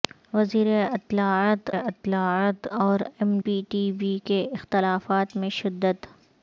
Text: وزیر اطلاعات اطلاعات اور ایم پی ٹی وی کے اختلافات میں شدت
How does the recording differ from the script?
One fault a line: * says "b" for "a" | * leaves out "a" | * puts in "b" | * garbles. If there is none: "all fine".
all fine